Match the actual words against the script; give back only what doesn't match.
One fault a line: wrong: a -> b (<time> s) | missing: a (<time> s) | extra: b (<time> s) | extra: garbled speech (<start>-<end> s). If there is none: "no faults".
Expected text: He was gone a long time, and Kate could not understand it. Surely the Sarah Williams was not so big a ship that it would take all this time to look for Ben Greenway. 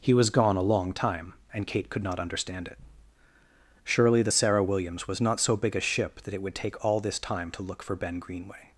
no faults